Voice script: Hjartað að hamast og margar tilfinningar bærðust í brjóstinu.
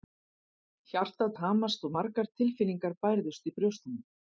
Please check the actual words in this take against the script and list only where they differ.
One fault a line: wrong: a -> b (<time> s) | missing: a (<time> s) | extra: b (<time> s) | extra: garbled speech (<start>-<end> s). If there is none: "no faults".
no faults